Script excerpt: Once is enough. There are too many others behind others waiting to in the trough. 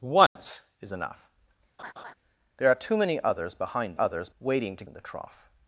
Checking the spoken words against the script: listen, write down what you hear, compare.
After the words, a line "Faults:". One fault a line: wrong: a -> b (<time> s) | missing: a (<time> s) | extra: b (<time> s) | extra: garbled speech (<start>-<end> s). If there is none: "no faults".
Once is enough. There are too many others behind others waiting to in the trough.
Faults:
no faults